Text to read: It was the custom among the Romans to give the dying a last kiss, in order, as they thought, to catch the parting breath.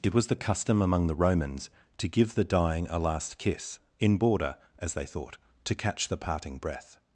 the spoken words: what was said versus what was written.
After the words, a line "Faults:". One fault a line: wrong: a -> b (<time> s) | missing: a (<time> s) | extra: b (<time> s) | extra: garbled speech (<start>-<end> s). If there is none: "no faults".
It was the custom among the Romans to give the dying a last kiss, in border, as they thought, to catch the parting breath.
Faults:
wrong: order -> border (4.2 s)